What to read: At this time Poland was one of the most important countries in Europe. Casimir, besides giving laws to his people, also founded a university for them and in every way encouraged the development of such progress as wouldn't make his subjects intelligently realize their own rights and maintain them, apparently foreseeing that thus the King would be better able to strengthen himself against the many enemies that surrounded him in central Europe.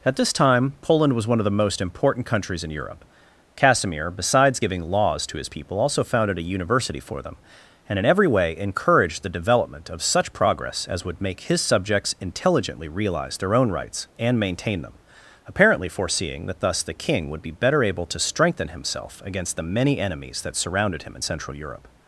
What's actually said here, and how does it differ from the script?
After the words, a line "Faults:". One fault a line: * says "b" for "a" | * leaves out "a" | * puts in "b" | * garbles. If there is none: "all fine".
At this time Poland was one of the most important countries in Europe. Casimir, besides giving laws to his people, also founded a university for them and in every way encouraged the development of such progress as would make his subjects intelligently realize their own rights and maintain them, apparently foreseeing that thus the King would be better able to strengthen himself against the many enemies that surrounded him in central Europe.
Faults:
* says "would" for "wouldn't"